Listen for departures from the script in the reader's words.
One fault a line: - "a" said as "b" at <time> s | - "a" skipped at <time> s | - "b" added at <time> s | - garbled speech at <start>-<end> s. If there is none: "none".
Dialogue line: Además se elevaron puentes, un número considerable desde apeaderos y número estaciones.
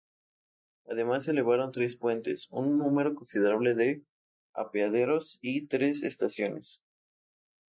- "tres" added at 1.7 s
- "desde" said as "de" at 3.8 s
- "número" said as "tres" at 5.7 s